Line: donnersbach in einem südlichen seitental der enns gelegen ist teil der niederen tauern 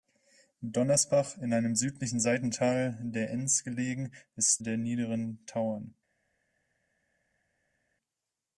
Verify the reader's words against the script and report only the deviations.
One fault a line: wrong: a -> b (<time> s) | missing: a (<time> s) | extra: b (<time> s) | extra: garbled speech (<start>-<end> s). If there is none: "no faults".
missing: teil (4.6 s)